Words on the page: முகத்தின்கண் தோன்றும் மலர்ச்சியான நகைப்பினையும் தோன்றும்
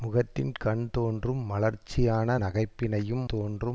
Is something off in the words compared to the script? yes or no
no